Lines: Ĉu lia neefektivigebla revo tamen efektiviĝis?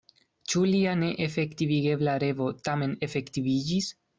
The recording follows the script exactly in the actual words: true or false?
true